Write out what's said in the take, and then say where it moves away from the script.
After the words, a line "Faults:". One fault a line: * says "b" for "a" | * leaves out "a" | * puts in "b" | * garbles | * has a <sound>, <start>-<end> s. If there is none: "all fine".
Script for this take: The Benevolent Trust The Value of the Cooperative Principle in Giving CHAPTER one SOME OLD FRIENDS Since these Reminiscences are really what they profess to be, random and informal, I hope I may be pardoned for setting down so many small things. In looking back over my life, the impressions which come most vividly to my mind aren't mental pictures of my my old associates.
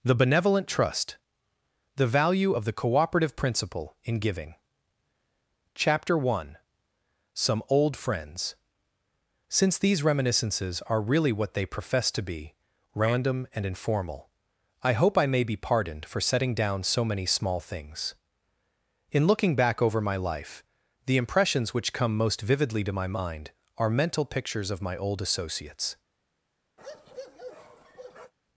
The Benevolent Trust The Value of the Cooperative Principle in Giving CHAPTER one SOME OLD FRIENDS Since these Reminiscences are really what they profess to be, random and informal, I hope I may be pardoned for setting down so many small things. In looking back over my life, the impressions which come most vividly to my mind are mental pictures of my old associates.
Faults:
* says "are" for "aren't"
* leaves out "my"
* has a bark, 26.8-28.3 s